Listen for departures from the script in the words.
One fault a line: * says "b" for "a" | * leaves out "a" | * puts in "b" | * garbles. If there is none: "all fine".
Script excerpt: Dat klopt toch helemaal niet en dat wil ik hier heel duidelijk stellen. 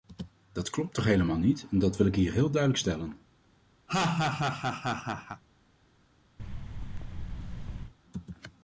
all fine